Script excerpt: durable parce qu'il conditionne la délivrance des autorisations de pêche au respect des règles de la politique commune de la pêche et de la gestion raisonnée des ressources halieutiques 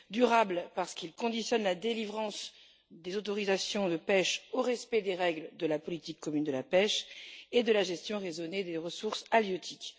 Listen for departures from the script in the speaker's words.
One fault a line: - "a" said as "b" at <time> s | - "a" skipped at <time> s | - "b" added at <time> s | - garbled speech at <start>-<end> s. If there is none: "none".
none